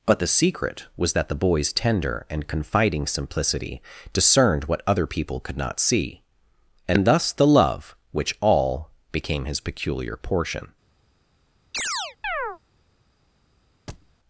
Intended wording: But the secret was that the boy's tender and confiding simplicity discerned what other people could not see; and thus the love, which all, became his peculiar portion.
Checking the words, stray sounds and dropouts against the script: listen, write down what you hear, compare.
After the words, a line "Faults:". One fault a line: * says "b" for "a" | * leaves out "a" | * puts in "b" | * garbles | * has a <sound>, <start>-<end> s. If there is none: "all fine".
But the secret was that the boy's tender and confiding simplicity discerned what other people could not see; and thus the love, which all, became his peculiar portion.
Faults:
* has a chirp, 11.7-12.6 s
* has a thud, 13.9-14.1 s